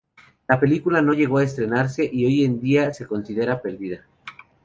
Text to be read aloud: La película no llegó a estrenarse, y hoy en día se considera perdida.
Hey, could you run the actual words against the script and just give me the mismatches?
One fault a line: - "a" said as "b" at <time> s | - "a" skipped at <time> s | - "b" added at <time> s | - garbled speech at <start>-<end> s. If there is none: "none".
none